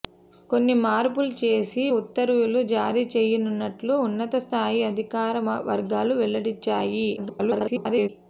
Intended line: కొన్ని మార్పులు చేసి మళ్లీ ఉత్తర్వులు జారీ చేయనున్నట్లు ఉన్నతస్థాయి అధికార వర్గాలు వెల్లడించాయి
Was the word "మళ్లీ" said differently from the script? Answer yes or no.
yes